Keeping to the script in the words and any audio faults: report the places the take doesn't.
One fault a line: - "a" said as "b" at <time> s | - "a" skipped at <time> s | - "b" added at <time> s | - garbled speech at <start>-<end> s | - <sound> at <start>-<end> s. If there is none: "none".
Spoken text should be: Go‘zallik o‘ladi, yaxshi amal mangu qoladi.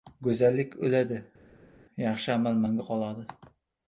none